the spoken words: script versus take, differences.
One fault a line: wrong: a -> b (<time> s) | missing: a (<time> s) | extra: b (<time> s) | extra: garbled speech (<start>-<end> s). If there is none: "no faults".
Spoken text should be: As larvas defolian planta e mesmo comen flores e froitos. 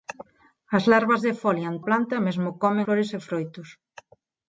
no faults